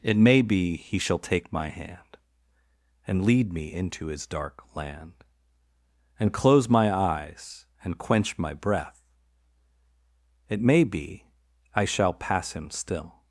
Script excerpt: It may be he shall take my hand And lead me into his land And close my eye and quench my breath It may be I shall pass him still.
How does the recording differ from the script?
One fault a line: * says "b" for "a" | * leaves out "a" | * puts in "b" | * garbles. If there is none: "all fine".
* puts in "dark"
* says "eyes" for "eye"